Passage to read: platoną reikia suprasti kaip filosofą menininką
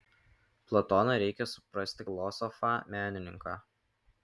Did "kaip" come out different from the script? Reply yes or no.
yes